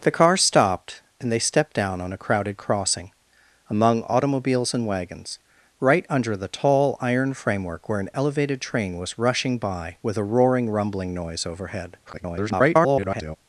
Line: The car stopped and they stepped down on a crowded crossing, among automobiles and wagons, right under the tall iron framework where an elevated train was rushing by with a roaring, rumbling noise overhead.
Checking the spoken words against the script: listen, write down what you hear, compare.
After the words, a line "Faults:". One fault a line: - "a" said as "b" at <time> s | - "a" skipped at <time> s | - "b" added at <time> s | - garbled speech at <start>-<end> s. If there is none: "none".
The car stopped and they stepped down on a crowded crossing, among automobiles and wagons, right under the tall iron framework where an elevated train was rushing by with a roaring, rumbling noise overhead. [garbled]
Faults:
- garbled speech at 12.0-13.4 s